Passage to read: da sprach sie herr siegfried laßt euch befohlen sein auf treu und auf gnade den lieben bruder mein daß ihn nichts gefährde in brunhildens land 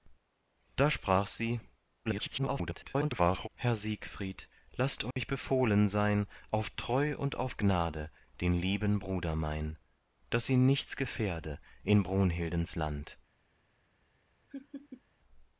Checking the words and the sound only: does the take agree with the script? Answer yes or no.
no